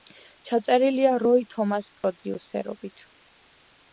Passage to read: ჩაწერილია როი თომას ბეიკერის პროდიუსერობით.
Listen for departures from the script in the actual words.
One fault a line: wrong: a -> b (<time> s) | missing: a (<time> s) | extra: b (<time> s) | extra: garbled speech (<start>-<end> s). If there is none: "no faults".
missing: ბეიკერის (1.9 s)